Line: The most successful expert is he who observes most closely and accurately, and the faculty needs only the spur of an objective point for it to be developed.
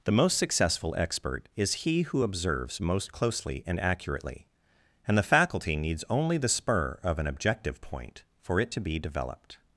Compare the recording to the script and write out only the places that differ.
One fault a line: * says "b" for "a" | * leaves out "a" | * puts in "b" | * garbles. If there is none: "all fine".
all fine